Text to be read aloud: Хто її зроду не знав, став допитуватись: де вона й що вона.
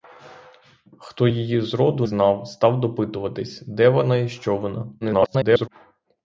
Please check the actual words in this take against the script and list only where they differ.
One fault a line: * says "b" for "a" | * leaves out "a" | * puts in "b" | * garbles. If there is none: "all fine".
* leaves out "не"
* garbles